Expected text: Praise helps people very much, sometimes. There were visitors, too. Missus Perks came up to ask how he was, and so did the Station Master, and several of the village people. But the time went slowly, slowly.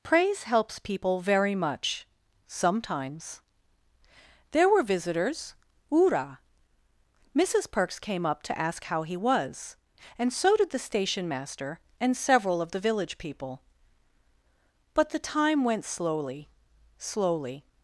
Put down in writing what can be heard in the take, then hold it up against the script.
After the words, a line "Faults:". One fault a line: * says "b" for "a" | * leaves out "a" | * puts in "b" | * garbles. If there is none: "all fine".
Praise helps people very much, sometimes. There were visitors, ura. Missus Perks came up to ask how he was, and so did the Station Master, and several of the village people. But the time went slowly, slowly.
Faults:
* says "ura" for "too"